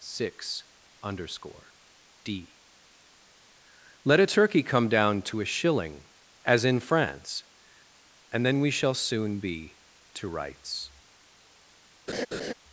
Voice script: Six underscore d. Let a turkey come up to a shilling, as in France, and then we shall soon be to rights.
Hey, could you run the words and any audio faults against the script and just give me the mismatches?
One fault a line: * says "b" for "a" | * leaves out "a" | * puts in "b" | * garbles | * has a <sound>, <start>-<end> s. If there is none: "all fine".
* says "down" for "up"
* has a laugh, 12.1-12.5 s